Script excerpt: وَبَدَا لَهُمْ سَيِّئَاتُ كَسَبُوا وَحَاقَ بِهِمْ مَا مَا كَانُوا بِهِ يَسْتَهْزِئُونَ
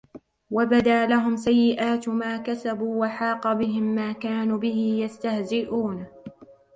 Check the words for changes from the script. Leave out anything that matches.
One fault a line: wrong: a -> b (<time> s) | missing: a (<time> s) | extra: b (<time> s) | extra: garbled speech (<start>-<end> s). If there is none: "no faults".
extra: مَا (2.1 s)
missing: مَا (4.1 s)